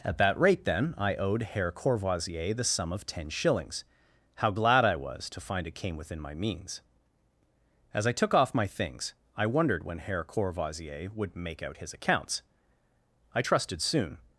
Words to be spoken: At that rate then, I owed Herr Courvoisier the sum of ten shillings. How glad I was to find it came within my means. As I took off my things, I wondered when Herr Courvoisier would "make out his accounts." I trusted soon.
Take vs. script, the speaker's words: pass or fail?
pass